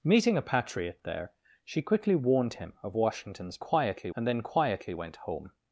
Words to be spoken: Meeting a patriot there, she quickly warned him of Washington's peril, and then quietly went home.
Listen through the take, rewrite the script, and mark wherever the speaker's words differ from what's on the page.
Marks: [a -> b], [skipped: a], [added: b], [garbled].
Meeting a patriot there, she quickly warned him of Washington's [peril, -> quietly] and then quietly went home.